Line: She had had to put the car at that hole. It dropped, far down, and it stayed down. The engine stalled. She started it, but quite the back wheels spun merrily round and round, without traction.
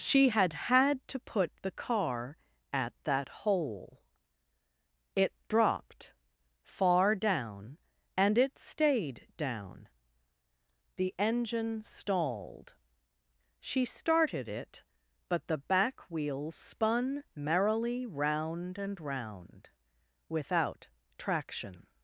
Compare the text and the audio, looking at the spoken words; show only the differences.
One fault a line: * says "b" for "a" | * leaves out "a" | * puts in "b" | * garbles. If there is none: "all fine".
* leaves out "quite"